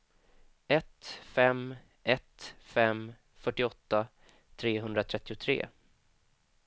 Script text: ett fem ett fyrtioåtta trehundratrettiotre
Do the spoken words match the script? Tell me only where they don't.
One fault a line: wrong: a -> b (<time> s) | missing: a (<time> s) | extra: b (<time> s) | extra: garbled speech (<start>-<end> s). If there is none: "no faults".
extra: fem (2.6 s)